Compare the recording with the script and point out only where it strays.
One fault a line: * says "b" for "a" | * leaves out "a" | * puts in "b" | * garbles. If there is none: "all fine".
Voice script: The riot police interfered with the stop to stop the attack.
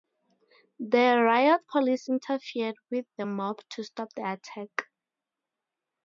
* says "mob" for "stop"